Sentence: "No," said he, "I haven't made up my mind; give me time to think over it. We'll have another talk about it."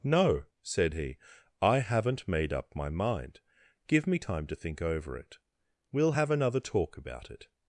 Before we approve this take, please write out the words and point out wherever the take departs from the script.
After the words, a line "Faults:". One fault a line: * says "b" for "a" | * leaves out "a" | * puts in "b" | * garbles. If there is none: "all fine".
"No," said he, "I haven't made up my mind; give me time to think over it. We'll have another talk about it."
Faults:
all fine